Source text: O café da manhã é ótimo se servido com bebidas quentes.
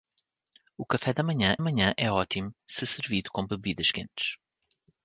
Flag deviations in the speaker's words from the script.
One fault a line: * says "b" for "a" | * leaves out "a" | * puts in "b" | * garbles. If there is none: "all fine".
* puts in "manhã"